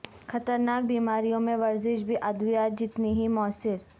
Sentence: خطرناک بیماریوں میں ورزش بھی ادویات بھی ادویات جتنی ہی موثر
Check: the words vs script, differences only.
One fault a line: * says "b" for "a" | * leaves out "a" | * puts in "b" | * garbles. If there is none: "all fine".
* leaves out "بھی ادویات"